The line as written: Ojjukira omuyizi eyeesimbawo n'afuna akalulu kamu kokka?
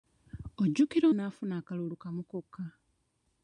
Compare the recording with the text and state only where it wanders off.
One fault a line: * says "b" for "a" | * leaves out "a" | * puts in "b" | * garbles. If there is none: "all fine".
* leaves out "omuyizi eyeesimbawo"